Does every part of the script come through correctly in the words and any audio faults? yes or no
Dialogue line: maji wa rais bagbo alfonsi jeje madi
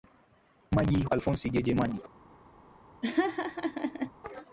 no